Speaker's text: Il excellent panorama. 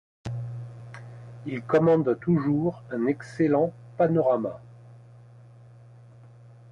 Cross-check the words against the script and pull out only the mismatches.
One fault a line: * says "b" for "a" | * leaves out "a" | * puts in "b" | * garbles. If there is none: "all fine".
* puts in "commande toujours un"